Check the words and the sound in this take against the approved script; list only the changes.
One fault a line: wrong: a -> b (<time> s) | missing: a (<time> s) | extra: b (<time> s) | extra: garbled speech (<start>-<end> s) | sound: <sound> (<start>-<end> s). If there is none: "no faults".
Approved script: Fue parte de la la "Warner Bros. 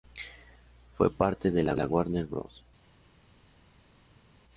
no faults